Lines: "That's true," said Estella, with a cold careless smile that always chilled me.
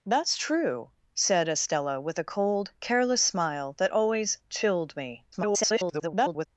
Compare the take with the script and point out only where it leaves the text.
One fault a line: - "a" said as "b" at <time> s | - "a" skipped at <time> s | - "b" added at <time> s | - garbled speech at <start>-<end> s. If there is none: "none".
- garbled speech at 5.3-6.5 s